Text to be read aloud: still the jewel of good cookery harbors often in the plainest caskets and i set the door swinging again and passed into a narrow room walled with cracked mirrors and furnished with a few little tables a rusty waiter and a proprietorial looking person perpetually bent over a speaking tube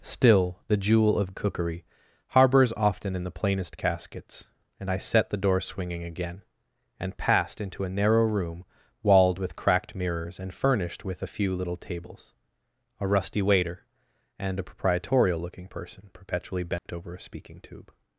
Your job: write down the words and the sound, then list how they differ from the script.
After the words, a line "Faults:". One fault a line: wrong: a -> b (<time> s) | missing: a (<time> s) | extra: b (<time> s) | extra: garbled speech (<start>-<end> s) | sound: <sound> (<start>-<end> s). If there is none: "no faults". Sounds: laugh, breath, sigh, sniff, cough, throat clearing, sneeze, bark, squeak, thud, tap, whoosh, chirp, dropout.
still the jewel of cookery harbors often in the plainest caskets and i set the door swinging again and passed into a narrow room walled with cracked mirrors and furnished with a few little tables a rusty waiter and a proprietorial looking person perpetually bent over a speaking tube
Faults:
missing: good (1.3 s)
sound: dropout (16.8-16.9 s)